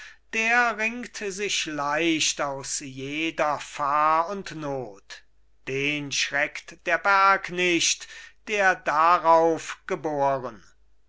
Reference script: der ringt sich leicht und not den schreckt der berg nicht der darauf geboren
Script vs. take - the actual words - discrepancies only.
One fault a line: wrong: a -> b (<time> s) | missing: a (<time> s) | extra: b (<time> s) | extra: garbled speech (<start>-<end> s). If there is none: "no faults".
extra: aus jeder fahr (2.4 s)